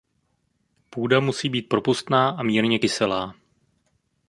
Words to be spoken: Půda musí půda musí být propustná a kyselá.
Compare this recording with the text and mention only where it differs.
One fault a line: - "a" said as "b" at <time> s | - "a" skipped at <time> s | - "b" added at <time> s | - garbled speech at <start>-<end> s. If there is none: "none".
- "půda musí" skipped at 1.5 s
- "mírně" added at 2.4 s